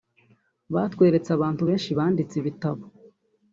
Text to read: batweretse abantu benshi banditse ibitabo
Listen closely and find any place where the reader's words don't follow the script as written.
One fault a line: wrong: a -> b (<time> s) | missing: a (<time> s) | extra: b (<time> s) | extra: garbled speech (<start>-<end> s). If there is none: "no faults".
no faults